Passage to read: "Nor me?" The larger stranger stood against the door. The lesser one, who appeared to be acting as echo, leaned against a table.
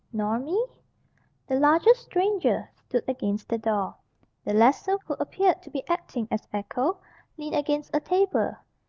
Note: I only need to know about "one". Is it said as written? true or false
false